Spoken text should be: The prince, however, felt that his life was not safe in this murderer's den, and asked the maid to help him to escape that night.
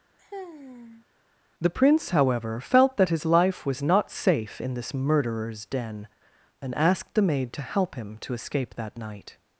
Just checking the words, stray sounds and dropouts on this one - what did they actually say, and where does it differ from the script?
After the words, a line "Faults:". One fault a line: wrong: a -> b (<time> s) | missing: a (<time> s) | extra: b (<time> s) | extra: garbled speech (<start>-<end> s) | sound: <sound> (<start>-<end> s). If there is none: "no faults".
The prince, however, felt that his life was not safe in this murderer's den, and asked the maid to help him to escape that night.
Faults:
sound: sigh (0.2-1.1 s)